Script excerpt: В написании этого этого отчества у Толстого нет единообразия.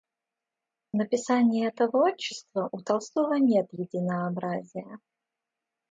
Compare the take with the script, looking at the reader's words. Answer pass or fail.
fail